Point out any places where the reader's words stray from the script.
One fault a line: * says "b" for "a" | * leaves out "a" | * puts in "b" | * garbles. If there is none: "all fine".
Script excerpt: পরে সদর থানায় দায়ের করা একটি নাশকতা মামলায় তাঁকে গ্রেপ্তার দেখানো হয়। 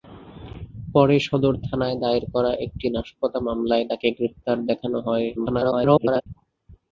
* garbles